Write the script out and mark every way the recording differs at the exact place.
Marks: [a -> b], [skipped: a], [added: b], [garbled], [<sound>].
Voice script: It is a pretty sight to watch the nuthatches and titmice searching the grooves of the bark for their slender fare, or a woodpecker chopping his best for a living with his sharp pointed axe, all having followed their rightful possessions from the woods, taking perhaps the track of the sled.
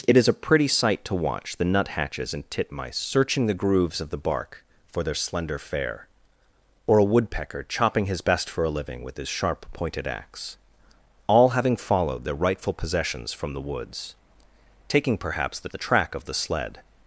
It is a pretty sight to watch the nuthatches and titmice searching the grooves of the bark for their slender fare, or a woodpecker chopping his best for a living with his sharp pointed axe, all having followed their rightful possessions from the woods, taking perhaps the [added: the] track of the sled.